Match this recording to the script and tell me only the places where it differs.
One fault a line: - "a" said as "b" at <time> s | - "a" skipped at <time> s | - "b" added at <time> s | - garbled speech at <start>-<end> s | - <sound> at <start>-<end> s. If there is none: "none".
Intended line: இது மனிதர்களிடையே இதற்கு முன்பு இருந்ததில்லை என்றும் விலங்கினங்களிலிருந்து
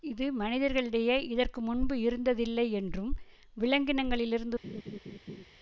- laugh at 4.6-5.5 s